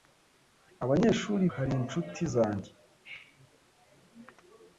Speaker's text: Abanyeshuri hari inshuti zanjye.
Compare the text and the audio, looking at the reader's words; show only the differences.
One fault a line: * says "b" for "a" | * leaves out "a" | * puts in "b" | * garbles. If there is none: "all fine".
all fine